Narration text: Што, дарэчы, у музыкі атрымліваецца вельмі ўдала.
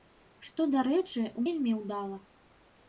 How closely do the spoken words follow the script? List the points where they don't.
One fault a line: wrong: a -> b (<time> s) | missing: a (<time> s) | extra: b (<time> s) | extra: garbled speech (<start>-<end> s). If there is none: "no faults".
missing: музыкі атрымліваецца (1.4 s)